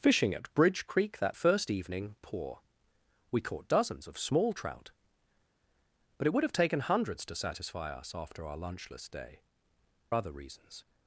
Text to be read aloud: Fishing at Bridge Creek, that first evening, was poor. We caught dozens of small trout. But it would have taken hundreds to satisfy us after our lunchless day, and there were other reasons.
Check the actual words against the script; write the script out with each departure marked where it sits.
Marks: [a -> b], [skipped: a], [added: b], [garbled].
Fishing at Bridge Creek, that first evening, [skipped: was] poor. We caught dozens of small trout. But it would have taken hundreds to satisfy us after our lunchless day, [skipped: and there were] other reasons.